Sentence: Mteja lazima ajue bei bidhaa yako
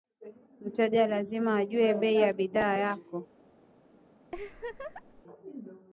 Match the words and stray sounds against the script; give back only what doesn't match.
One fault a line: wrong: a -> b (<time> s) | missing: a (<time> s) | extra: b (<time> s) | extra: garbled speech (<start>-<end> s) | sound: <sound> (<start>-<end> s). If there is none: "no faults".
extra: ya (2.1 s)
sound: laugh (4.3-5.2 s)